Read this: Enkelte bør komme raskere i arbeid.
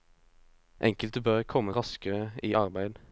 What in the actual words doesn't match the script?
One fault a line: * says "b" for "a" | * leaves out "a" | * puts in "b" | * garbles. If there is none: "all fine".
all fine